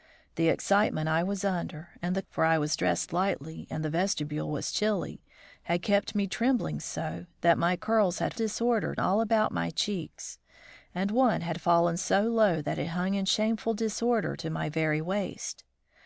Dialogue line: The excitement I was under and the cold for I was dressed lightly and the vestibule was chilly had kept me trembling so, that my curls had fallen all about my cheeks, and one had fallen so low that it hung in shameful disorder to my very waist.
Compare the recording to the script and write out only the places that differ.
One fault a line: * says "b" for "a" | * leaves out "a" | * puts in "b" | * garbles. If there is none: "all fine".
* leaves out "cold"
* says "disorder" for "fallen"